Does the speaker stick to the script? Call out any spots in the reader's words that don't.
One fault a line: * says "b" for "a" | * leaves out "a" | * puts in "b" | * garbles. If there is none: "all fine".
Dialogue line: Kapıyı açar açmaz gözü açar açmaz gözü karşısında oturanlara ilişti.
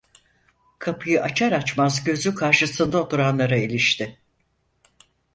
* leaves out "açar açmaz gözü"